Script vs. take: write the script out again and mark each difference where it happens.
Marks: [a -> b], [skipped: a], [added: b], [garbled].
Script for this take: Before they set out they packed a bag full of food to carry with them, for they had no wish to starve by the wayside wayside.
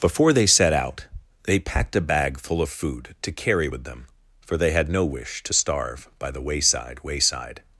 Before they set out they packed a bag full of food to carry with them, for they had no wish to starve by the wayside wayside.